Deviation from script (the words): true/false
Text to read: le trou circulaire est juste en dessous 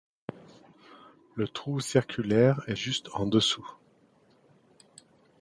false